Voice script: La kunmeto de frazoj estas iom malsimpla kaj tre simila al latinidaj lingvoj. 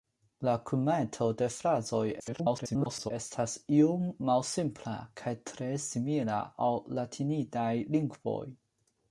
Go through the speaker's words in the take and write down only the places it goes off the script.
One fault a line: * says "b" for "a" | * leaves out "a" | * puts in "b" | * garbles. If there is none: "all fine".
* garbles